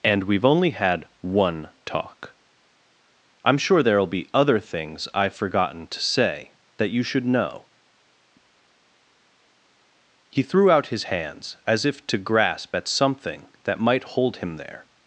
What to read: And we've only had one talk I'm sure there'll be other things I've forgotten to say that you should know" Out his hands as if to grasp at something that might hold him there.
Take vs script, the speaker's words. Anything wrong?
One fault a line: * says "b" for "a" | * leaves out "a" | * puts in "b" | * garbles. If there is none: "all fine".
* puts in "He threw"